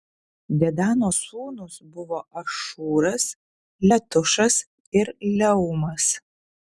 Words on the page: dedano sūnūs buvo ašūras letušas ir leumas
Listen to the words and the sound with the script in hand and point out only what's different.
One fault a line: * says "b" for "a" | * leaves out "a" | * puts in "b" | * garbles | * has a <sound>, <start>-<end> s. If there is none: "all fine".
all fine